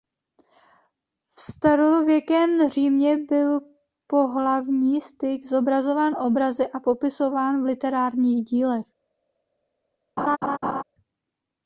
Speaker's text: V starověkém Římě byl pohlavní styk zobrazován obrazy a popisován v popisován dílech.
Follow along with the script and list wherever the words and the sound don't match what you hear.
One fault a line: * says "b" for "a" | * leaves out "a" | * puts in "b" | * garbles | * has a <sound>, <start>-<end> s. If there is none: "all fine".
* says "literárních" for "popisován"
* has a laugh, 10.2-10.8 s